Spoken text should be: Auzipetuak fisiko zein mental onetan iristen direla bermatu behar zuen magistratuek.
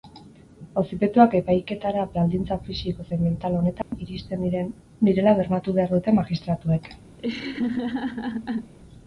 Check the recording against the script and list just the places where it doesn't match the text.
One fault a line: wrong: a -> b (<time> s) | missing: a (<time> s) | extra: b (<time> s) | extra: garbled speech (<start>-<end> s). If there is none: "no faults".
extra: epaiketara baldintza (1.4 s)
wrong: zuen -> dute (6.0 s)